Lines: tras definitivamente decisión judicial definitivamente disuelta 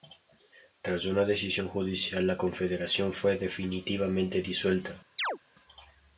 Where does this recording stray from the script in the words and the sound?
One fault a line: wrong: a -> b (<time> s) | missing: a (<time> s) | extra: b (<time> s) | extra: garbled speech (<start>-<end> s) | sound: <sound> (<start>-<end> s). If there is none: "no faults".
wrong: definitivamente -> una (1.1 s)
extra: la confederación fue (2.2 s)
sound: chirp (5.2-5.4 s)